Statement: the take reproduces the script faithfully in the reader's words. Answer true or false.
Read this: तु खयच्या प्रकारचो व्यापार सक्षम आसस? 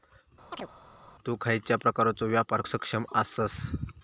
true